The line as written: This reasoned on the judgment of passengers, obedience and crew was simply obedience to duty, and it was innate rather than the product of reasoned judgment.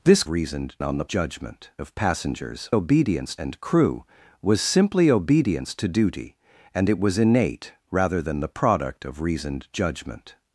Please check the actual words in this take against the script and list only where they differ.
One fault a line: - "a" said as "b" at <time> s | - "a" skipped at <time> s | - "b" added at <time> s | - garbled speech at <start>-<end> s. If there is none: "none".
none